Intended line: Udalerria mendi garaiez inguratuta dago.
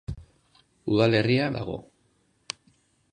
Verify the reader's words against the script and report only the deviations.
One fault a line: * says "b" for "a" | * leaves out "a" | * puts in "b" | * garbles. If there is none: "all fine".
* leaves out "mendi garaiez inguratuta"